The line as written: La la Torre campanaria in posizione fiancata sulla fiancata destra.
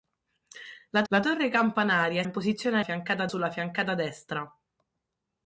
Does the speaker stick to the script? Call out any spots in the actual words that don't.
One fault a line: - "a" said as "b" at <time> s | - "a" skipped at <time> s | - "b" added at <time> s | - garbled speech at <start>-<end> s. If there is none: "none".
none